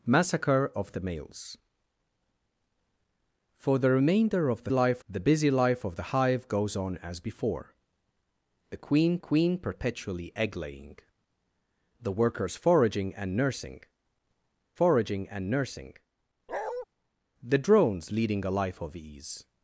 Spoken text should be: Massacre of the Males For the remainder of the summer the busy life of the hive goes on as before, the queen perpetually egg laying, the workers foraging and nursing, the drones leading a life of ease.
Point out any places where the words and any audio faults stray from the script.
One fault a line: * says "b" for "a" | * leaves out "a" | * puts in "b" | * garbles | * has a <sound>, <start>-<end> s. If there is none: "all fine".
* says "life" for "summer"
* puts in "queen"
* puts in "foraging and nursing"
* has a bark, 16.5-16.9 s